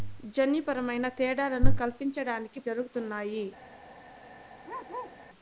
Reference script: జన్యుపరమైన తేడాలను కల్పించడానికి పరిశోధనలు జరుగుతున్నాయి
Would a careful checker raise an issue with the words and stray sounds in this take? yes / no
yes